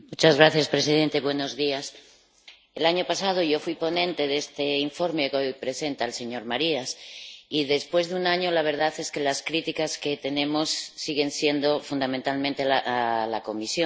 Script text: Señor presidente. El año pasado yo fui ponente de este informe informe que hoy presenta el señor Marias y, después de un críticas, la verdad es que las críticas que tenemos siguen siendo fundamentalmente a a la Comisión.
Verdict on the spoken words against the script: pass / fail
fail